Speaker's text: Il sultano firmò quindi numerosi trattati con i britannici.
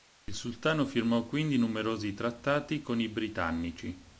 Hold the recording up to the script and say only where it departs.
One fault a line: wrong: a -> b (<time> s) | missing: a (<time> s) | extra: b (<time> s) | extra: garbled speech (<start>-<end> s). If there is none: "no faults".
no faults